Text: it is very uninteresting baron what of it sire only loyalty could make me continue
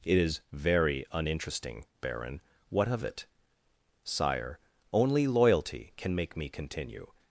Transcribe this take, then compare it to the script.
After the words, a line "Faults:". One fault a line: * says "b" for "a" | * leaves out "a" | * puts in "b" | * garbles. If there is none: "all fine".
it is very uninteresting baron what of it sire only loyalty can make me continue
Faults:
* says "can" for "could"